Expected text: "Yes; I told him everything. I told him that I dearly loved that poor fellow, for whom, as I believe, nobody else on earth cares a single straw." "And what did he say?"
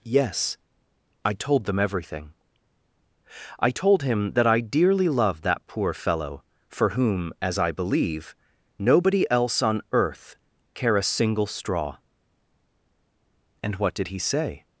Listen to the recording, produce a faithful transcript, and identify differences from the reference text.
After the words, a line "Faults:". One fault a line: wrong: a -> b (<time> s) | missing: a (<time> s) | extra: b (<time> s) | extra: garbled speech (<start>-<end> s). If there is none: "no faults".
"Yes; I told them everything. I told him that I dearly loved that poor fellow, for whom, as I believe, nobody else on earth care a single straw." "And what did he say?"
Faults:
wrong: him -> them (1.6 s)
wrong: cares -> care (10.7 s)